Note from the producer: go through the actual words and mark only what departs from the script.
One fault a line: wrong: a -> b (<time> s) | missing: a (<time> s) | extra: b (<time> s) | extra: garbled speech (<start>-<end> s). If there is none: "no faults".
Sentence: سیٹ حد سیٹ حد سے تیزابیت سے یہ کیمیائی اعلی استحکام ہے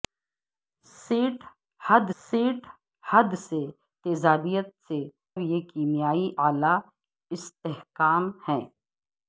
no faults